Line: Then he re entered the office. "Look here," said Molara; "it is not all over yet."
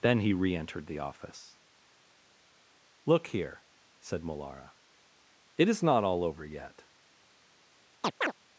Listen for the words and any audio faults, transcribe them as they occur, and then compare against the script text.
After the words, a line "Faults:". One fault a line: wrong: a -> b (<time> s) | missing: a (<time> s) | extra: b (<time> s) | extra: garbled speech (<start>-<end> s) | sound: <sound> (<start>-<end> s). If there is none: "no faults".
Then he re entered the office. "Look here," said Molara; "it is not all over yet."
Faults:
sound: chirp (8.0-8.3 s)